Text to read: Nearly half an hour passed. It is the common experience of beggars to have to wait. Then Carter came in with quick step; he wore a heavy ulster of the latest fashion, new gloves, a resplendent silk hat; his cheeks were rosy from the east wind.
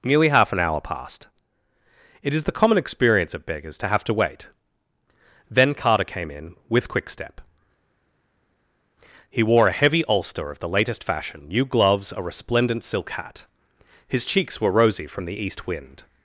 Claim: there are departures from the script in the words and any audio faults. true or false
false